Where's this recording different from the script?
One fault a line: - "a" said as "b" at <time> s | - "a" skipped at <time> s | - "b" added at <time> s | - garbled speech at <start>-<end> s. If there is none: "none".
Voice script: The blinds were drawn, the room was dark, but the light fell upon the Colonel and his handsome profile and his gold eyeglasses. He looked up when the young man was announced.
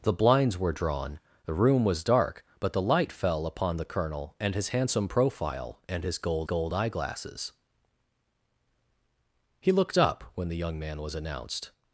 - "gold" added at 6.4 s